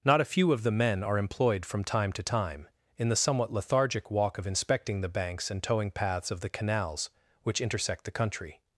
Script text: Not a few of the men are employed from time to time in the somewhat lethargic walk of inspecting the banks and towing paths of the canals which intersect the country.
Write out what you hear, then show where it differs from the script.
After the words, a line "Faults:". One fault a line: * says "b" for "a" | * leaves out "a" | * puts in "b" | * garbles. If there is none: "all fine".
Not a few of the men are employed from time to time in the somewhat lethargic walk of inspecting the banks and towing paths of the canals which intersect the country.
Faults:
all fine